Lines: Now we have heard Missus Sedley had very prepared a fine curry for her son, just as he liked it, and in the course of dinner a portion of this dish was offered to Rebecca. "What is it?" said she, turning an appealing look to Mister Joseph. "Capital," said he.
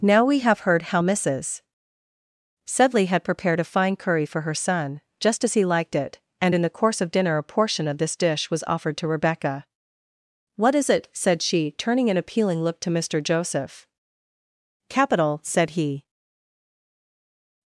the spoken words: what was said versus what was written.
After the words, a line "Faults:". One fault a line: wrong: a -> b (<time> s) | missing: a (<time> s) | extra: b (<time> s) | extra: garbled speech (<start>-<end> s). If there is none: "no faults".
Now we have heard how Missus Sedley had prepared a fine curry for her son, just as he liked it, and in the course of dinner a portion of this dish was offered to Rebecca. "What is it?" said she, turning an appealing look to Mister Joseph. "Capital," said he.
Faults:
extra: how (0.8 s)
missing: very (3.2 s)